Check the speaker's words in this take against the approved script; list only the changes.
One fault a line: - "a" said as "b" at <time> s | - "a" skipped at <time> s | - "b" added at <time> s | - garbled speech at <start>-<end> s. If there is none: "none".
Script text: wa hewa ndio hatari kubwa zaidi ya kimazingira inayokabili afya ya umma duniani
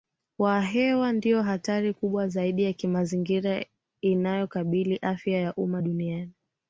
none